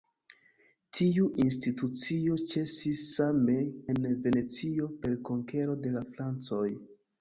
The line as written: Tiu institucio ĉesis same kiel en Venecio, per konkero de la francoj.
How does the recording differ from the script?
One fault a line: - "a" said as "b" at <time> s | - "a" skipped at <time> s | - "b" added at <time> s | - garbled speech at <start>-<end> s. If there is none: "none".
- "kiel" skipped at 3.6 s